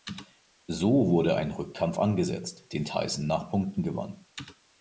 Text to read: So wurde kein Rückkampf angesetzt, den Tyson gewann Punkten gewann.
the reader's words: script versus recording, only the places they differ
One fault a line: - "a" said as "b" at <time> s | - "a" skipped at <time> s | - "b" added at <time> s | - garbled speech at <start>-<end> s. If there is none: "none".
- "kein" said as "ein" at 1.4 s
- "gewann" said as "nach" at 3.3 s